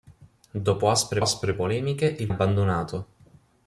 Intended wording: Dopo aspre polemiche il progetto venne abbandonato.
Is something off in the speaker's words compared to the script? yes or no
yes